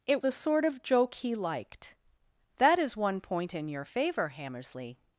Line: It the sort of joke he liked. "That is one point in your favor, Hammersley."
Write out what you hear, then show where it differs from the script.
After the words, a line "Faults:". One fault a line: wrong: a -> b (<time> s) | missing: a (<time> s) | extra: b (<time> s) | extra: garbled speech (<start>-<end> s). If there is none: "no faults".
It the sort of joke he liked. "That is one point in your favor, Hammersley."
Faults:
no faults